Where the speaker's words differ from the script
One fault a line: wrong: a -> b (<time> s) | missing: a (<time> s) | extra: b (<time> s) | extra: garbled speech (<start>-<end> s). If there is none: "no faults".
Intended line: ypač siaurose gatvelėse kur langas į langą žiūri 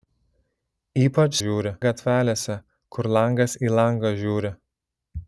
wrong: siaurose -> žiūri (1.4 s)